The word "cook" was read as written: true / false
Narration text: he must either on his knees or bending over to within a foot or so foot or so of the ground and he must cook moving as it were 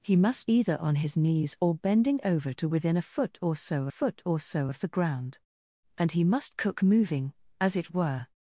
true